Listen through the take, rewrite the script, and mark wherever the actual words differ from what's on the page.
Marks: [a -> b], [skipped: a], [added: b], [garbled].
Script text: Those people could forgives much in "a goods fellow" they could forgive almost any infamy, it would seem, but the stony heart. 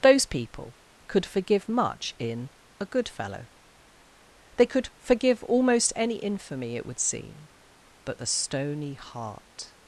Those people could [forgives -> forgive] much in "a [goods -> good] fellow" they could forgive almost any infamy, it would seem, but the stony heart.